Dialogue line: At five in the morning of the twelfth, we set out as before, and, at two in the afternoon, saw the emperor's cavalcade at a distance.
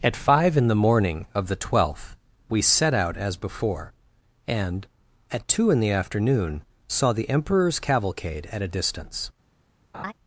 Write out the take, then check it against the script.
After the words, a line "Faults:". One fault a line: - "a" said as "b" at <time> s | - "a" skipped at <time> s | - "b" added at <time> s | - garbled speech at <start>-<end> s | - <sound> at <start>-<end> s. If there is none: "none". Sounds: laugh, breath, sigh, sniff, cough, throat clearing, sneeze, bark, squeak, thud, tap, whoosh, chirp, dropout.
At five in the morning of the twelfth, we set out as before, and, at two in the afternoon, saw the emperor's cavalcade at a distance.
Faults:
- laugh at 9.9-10.1 s